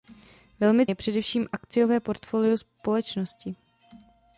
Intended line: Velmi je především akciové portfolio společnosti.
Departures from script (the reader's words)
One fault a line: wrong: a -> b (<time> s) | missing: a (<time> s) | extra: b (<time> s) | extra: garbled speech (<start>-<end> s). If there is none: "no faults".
no faults